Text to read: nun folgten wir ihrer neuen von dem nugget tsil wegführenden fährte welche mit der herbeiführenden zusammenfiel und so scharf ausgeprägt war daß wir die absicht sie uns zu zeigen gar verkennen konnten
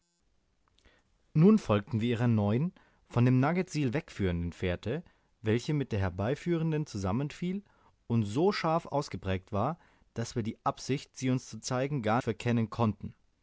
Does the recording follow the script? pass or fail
pass